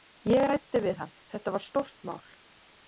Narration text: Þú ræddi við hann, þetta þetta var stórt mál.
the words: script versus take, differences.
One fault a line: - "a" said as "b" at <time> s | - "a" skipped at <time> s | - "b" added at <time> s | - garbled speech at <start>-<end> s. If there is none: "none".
- "Þú" said as "Ég" at 0.3 s
- "þetta" skipped at 1.6 s